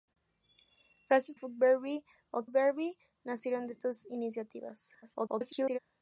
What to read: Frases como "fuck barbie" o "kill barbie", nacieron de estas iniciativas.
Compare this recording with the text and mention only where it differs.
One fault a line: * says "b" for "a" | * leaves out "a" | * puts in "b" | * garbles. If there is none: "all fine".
* leaves out "como"
* leaves out "kill"
* garbles